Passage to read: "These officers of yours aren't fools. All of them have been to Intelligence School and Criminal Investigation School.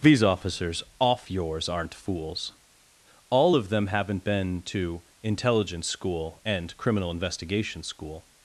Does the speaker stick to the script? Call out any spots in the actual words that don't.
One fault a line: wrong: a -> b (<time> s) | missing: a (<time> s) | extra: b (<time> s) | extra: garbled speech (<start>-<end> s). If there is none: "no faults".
wrong: of -> off (1.0 s)
wrong: have -> haven't (3.9 s)